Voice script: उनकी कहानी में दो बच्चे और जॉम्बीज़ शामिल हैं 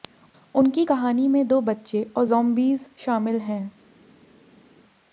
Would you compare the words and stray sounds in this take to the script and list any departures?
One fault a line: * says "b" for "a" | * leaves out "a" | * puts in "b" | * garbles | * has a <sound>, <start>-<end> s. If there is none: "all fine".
all fine